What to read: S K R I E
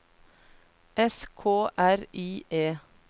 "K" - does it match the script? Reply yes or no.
yes